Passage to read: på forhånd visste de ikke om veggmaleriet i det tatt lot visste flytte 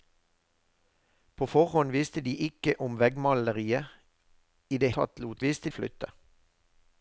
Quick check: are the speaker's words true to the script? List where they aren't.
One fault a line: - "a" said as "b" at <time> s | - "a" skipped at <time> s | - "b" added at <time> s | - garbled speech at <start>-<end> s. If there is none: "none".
none